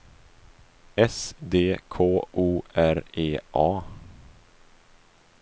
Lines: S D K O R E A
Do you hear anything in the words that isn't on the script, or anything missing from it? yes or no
no